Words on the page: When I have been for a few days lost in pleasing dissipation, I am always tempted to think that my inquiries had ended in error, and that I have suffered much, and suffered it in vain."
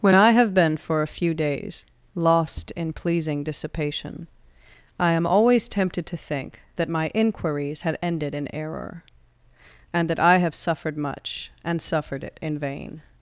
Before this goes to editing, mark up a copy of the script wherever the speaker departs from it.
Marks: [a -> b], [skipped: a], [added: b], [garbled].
When I have been for a few days lost in pleasing dissipation, I am always tempted to think that my inquiries had ended in error, and that I have suffered much, and suffered it in vain."